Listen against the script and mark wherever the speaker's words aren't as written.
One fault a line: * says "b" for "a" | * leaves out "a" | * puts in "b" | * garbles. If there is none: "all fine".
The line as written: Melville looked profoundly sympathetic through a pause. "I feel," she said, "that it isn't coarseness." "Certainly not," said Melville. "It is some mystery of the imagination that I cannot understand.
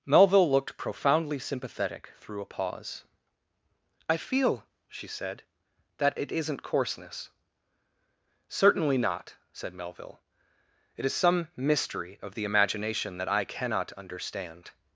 all fine